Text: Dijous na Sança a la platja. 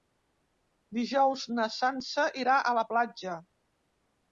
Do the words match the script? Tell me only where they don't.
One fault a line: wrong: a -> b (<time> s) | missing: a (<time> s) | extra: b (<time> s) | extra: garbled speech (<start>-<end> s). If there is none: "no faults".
extra: irà (2.5 s)